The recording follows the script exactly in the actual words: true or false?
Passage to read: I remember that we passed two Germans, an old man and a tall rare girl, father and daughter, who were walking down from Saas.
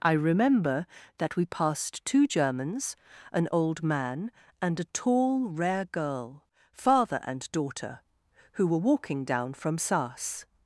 true